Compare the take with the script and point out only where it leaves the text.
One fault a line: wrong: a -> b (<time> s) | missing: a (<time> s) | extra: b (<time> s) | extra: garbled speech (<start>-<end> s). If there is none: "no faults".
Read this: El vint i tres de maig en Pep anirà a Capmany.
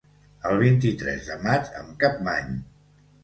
missing: Pep anirà a (1.9 s)